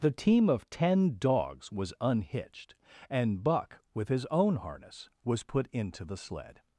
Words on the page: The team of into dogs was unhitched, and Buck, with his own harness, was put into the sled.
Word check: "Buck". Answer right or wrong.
right